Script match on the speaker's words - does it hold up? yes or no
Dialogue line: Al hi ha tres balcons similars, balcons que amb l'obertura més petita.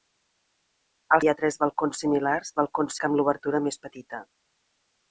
yes